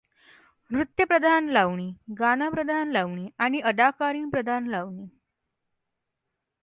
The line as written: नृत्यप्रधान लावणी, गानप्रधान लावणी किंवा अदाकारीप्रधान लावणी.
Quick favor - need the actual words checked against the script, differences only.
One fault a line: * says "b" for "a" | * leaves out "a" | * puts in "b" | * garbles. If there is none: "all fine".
* says "आणि" for "किंवा"